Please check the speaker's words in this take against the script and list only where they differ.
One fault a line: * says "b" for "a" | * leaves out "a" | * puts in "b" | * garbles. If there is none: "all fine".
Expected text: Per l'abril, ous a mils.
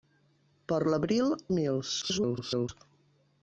* leaves out "ous"
* garbles